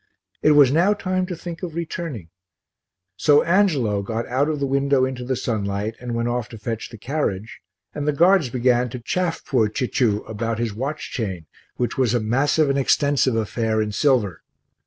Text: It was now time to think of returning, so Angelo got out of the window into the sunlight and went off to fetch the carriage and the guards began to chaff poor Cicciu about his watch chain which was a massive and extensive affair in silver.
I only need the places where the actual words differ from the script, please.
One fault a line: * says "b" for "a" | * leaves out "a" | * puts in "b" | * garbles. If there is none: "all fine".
all fine